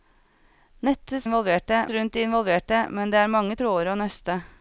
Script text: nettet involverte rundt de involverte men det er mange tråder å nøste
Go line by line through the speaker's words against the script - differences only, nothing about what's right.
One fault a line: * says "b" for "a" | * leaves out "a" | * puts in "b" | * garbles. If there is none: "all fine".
all fine